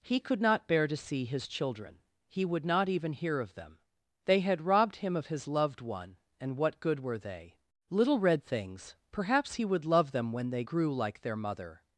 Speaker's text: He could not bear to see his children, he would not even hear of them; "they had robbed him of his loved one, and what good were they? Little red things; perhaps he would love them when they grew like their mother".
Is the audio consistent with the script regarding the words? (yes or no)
yes